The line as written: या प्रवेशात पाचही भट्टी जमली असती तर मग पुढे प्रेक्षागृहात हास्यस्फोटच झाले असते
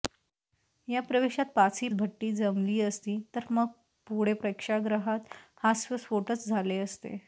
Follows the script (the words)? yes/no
yes